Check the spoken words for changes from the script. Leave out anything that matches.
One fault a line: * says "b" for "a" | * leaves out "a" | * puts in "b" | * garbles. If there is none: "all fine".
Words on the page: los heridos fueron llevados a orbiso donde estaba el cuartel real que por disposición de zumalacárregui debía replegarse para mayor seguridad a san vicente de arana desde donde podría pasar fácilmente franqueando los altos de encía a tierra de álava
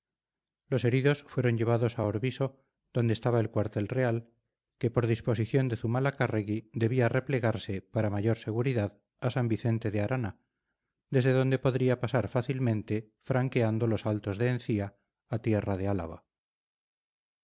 all fine